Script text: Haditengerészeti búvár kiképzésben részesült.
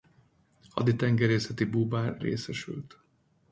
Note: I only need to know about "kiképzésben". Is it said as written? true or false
false